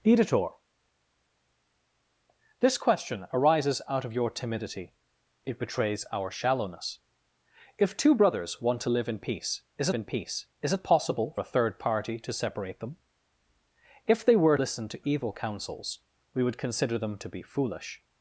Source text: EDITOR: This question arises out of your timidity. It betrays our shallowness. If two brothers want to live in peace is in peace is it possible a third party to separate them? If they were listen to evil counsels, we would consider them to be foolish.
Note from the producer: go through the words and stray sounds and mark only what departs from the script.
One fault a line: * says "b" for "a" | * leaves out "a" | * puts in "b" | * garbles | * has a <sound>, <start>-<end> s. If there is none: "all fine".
all fine